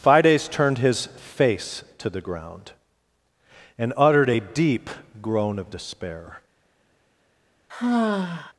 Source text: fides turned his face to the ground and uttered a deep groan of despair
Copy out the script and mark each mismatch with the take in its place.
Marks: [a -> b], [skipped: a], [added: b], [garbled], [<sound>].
fides turned his face to the ground and uttered a deep groan of despair [sigh]